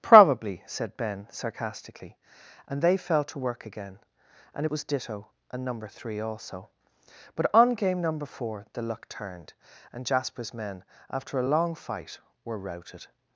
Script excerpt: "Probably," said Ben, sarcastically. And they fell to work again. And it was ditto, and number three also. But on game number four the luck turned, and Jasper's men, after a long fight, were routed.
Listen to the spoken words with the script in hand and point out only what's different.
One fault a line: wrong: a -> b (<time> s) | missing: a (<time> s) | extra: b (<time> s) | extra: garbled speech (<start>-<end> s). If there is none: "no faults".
no faults